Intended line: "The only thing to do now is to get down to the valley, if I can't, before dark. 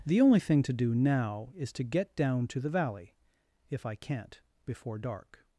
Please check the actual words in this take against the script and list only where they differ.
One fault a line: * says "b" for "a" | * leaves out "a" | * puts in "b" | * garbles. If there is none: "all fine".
all fine